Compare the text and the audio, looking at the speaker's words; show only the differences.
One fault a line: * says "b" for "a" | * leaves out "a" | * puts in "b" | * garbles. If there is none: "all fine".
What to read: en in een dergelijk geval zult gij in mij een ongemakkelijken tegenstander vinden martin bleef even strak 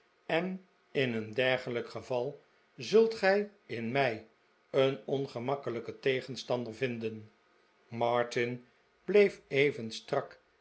all fine